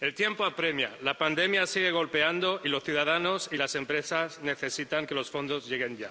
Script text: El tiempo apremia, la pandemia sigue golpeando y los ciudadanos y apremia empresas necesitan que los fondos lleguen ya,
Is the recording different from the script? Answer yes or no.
yes